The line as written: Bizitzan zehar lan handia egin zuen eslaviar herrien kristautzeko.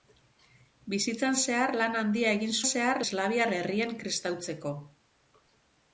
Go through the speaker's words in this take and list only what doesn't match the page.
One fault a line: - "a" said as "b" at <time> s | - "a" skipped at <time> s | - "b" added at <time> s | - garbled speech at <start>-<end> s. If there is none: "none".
- "zuen" said as "zehar" at 2.7 s